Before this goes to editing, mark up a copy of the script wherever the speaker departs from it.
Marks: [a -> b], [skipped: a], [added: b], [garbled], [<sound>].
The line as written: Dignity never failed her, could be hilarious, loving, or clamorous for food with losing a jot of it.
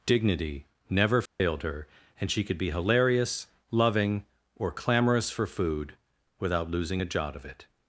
Dignity never failed [dropout] her, [added: and she] could be hilarious, loving, or clamorous for food [with -> without] losing a jot of it.